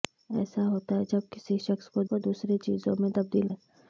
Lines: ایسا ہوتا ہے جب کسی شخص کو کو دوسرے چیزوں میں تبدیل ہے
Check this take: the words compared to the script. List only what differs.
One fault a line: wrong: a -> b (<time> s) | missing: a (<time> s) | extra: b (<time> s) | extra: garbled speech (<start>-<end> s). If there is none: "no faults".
no faults